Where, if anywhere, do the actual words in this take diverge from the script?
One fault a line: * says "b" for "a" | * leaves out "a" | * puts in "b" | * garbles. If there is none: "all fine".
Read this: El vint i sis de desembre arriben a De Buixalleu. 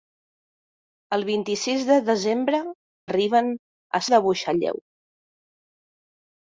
all fine